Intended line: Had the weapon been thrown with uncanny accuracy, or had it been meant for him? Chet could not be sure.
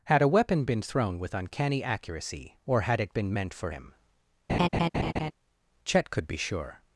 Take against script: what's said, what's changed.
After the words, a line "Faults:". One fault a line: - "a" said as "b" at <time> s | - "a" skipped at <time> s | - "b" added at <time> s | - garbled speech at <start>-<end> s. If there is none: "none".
Had a weapon been thrown with uncanny accuracy, or had it been meant for him? Chet could be sure.
Faults:
- "the" said as "a" at 0.2 s
- "not" skipped at 6.3 s